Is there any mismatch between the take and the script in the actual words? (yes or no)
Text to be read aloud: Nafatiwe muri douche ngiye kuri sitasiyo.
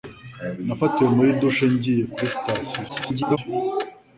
yes